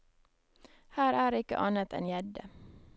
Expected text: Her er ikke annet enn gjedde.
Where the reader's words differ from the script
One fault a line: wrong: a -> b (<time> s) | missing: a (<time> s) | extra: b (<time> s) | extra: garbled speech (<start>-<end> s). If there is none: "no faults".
no faults